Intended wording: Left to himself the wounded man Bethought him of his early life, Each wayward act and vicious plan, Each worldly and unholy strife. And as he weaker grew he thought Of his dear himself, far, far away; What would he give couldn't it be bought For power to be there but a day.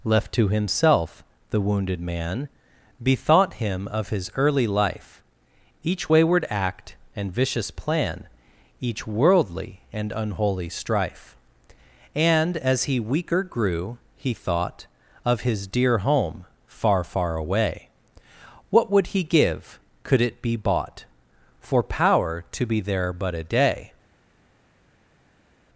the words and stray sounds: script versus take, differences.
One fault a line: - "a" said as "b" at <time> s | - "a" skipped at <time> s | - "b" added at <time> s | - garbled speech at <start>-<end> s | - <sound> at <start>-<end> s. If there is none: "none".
- "himself" said as "home" at 16.0 s
- "couldn't" said as "could" at 20.0 s